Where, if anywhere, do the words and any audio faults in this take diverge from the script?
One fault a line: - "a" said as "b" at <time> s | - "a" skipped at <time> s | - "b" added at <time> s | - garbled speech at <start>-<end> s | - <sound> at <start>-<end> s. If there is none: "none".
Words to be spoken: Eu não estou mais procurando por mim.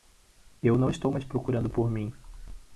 none